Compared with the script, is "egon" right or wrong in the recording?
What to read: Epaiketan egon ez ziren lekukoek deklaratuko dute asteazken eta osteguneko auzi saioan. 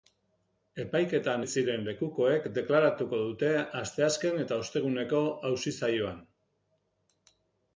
wrong